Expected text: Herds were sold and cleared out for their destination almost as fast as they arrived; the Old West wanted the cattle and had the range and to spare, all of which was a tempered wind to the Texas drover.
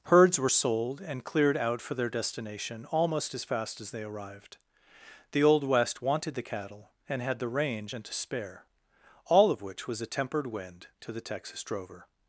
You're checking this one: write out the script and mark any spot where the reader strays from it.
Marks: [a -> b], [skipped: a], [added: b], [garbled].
Herds were sold and cleared out for their destination almost as fast as they arrived; the Old West wanted the cattle and had the range and to spare, all of which was a tempered wind to the Texas drover.